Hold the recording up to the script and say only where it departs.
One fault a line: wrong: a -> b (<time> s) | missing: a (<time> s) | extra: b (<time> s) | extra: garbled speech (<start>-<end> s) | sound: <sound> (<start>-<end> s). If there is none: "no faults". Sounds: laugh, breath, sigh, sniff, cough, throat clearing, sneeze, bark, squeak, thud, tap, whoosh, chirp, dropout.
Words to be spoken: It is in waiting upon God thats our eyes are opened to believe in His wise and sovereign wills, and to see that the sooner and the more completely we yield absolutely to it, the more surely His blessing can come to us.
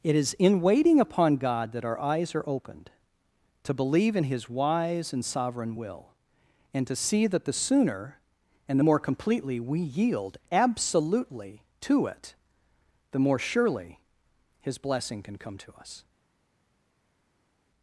wrong: thats -> that (1.7 s)
wrong: wills -> will (5.8 s)